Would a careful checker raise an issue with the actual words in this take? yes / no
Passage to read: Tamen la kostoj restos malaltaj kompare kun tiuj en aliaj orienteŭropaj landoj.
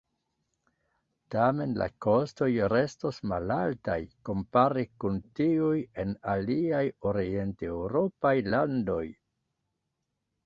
no